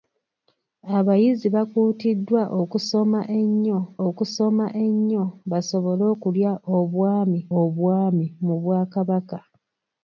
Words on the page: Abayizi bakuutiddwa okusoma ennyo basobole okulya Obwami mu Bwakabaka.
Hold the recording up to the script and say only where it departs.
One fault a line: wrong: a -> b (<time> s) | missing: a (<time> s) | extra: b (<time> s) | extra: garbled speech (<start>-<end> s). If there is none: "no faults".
extra: okusoma ennyo (4.1 s)
extra: Obwami (7.6 s)